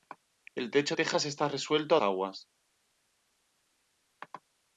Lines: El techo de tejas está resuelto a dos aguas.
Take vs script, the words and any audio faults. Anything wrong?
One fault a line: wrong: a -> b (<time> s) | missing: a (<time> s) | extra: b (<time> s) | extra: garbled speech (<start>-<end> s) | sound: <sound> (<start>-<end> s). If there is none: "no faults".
missing: de (0.9 s)
missing: dos (2.0 s)